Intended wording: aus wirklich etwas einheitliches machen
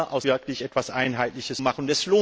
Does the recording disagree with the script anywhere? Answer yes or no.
no